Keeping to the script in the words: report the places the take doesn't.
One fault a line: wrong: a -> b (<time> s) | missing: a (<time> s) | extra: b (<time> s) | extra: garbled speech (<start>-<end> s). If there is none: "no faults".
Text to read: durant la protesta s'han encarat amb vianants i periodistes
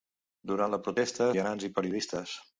missing: s'han encarat amb (1.3 s)